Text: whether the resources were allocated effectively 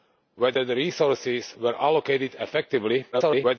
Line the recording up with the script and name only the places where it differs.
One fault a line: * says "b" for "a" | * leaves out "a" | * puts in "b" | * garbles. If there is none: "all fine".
* garbles